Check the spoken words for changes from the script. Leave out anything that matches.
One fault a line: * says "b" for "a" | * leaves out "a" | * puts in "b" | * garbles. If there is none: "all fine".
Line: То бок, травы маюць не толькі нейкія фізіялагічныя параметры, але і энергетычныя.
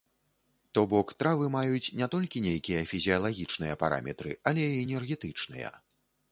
all fine